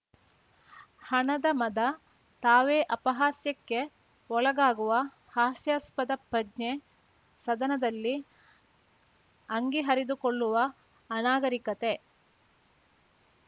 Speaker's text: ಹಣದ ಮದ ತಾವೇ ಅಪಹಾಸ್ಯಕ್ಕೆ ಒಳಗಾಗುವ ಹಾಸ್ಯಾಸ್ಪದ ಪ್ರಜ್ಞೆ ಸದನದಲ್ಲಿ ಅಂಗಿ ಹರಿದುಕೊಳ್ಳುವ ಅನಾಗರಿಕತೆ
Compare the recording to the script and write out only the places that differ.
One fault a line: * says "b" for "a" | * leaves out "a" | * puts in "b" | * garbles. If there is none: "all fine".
all fine